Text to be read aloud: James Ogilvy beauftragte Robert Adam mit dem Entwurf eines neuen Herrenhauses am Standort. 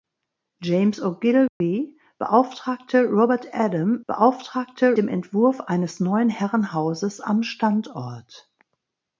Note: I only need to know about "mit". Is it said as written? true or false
false